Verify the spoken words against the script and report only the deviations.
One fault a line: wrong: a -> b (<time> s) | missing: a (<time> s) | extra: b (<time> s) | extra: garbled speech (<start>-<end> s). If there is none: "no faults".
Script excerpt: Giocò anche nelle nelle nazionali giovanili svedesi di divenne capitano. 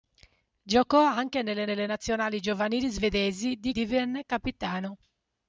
no faults